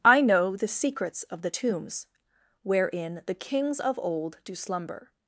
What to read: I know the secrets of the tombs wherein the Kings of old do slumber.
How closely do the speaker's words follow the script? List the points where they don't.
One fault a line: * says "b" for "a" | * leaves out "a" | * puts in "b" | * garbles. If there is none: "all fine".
all fine